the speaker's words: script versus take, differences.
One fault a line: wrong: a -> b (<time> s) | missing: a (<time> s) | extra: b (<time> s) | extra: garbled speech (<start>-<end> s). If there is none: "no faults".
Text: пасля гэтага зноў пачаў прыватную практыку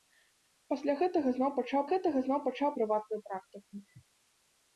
extra: гэтага зноў пачаў (1.9 s)